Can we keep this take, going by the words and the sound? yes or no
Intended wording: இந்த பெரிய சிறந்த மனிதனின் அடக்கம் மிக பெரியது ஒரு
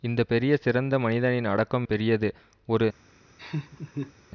no